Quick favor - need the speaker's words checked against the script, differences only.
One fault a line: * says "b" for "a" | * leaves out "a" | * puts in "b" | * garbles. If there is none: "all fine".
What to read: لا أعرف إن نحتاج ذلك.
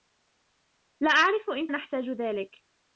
all fine